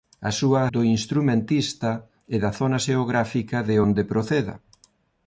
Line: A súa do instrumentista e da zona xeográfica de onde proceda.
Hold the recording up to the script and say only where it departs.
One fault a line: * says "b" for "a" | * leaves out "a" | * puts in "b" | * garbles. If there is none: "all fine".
all fine